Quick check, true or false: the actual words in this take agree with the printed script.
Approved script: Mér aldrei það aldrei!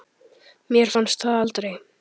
false